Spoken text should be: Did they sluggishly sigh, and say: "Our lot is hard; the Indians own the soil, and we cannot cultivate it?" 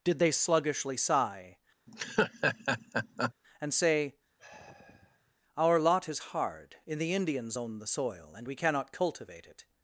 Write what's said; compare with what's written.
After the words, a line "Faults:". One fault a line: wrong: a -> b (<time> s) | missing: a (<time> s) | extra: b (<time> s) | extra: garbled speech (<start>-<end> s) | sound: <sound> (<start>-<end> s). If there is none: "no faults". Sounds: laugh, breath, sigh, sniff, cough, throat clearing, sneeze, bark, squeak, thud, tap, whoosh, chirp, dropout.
Did they sluggishly sigh, and say: "Our lot is hard; in the Indians own the soil, and we cannot cultivate it?"
Faults:
sound: laugh (1.9-3.3 s)
sound: sigh (4.4-5.3 s)
extra: in (6.9 s)